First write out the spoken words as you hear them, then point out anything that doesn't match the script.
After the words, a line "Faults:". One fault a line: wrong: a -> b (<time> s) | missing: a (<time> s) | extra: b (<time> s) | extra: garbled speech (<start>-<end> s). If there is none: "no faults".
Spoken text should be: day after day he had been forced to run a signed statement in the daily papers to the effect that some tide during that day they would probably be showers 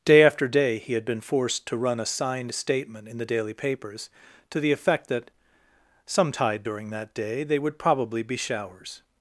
day after day he had been forced to run a signed statement in the daily papers to the effect that some tide during that day they would probably be showers
Faults:
no faults